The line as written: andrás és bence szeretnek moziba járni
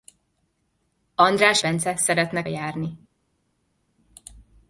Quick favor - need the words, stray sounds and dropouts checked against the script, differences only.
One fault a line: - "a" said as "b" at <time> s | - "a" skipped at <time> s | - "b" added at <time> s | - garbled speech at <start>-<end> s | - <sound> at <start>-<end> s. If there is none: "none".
- "és" skipped at 1.6 s
- "moziba" skipped at 2.5 s